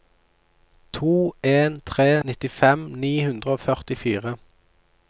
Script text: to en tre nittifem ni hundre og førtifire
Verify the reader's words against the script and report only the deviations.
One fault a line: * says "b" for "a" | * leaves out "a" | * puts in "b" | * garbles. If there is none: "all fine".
all fine